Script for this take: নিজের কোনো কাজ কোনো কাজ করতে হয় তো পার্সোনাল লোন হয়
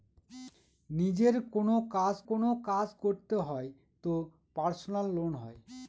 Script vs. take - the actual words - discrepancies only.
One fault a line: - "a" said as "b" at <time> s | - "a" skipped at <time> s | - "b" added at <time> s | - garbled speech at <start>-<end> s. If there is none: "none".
none